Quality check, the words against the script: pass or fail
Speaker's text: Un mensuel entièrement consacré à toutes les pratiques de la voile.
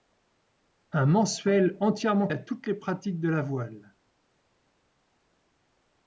fail